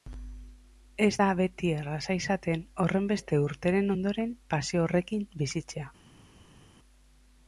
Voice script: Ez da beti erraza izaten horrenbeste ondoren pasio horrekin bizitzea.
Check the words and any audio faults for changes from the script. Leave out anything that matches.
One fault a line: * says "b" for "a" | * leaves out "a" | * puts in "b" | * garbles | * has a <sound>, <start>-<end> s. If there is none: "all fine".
* puts in "urteren"